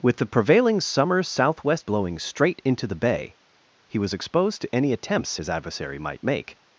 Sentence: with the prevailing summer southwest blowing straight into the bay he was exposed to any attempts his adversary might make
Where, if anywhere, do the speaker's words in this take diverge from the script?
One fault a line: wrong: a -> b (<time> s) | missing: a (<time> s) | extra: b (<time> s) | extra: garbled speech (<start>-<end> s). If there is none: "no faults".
no faults